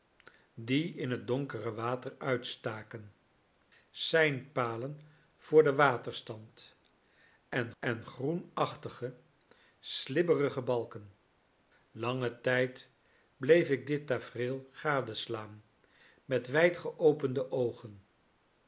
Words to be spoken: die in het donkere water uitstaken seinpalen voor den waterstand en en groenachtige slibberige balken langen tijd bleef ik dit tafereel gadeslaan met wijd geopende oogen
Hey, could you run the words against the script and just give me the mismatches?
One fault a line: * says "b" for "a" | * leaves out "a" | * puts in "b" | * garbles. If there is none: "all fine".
all fine